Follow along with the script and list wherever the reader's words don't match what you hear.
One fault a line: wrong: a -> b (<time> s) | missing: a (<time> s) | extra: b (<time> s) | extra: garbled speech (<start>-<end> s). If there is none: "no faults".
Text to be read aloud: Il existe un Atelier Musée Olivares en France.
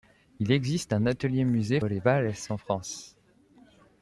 no faults